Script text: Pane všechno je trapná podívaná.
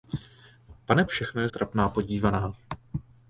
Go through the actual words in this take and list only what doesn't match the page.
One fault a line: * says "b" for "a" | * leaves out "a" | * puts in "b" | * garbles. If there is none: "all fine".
all fine